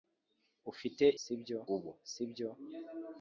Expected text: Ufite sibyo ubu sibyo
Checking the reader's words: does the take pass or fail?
pass